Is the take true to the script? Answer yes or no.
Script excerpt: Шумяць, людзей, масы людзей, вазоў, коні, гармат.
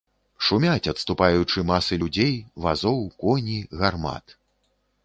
no